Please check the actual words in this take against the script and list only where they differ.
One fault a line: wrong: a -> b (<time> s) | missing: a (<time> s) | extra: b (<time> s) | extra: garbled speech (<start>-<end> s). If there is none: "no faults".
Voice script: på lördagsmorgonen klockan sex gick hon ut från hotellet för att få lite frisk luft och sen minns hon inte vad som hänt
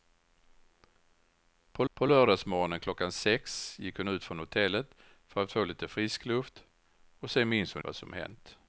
extra: på (1.9 s)
missing: inte (7.8 s)